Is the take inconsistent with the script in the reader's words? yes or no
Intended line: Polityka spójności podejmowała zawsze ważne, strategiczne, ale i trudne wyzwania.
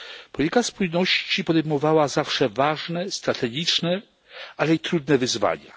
no